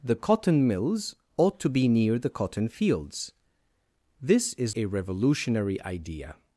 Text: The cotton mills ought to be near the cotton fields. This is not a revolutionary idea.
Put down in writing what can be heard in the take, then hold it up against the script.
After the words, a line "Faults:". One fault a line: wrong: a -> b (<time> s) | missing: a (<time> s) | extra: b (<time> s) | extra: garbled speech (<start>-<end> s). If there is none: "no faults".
The cotton mills ought to be near the cotton fields. This is a revolutionary idea.
Faults:
missing: not (4.7 s)